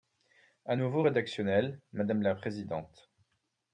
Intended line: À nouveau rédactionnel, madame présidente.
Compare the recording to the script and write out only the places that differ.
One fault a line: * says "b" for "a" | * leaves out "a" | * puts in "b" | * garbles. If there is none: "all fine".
* puts in "la"